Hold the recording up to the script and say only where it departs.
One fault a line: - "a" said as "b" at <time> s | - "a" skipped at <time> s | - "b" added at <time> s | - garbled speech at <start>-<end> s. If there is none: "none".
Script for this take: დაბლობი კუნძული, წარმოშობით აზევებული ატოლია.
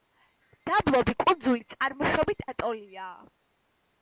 - "აზევებული" skipped at 2.4 s